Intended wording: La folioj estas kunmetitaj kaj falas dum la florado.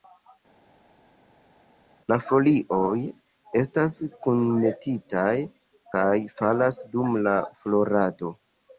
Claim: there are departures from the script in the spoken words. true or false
false